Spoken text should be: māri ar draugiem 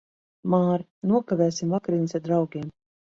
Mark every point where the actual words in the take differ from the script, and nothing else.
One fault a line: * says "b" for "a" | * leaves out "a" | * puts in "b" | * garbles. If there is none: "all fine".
* puts in "nokavēsim vakariņas"